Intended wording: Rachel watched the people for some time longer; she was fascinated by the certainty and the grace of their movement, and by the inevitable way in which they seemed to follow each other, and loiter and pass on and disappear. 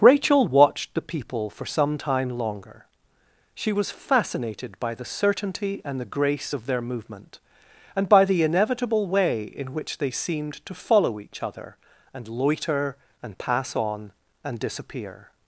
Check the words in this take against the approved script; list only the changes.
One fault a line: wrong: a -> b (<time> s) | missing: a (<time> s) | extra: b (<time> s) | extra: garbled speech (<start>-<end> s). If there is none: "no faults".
no faults